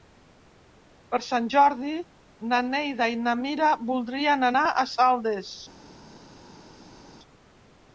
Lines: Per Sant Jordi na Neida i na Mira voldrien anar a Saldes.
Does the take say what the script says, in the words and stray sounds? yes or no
yes